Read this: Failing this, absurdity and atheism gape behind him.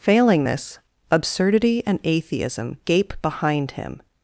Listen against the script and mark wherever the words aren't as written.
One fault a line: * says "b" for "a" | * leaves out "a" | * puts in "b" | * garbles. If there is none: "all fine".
all fine